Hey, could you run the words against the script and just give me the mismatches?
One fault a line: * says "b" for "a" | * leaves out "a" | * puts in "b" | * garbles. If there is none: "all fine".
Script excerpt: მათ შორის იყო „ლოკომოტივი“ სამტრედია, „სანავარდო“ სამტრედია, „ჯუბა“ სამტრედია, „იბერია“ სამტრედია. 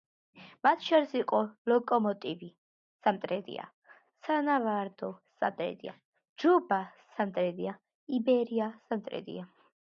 all fine